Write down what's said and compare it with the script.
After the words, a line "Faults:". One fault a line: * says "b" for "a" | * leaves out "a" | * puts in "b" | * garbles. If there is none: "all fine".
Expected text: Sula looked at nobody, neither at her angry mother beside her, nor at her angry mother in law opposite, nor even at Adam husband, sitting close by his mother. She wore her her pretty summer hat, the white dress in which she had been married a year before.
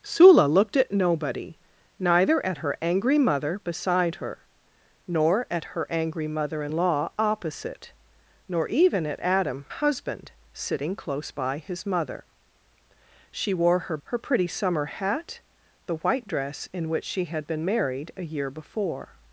Sula looked at nobody, neither at her angry mother beside her, nor at her angry mother in law opposite, nor even at Adam husband, sitting close by his mother. She wore her her pretty summer hat, the white dress in which she had been married a year before.
Faults:
all fine